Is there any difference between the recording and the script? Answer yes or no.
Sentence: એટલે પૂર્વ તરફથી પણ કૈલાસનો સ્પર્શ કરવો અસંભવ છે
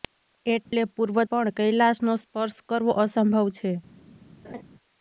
yes